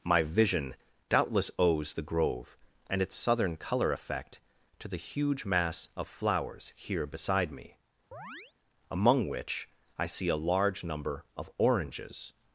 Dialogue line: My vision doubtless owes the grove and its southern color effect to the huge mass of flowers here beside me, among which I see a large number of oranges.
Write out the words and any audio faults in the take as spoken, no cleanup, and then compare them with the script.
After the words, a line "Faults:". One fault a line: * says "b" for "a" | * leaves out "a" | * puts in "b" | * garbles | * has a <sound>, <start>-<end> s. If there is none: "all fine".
My vision doubtless owes the grove and its southern color effect to the huge mass of flowers here beside me, among which I see a large number of oranges.
Faults:
* has a chirp, 8.1-8.5 s